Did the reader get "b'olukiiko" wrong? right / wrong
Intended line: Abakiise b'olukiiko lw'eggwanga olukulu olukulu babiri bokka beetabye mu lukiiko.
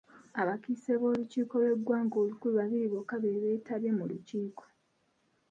right